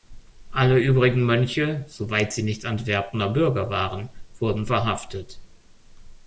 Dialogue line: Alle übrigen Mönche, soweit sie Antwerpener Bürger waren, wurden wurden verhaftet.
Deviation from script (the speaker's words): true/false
true